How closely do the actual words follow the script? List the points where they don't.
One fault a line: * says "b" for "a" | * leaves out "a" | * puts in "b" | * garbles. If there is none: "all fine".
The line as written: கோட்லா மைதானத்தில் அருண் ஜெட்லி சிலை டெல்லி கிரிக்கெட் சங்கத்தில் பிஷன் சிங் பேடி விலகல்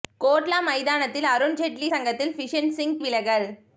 * leaves out "சிலை டெல்லி கிரிக்கெட்"
* leaves out "பேடி"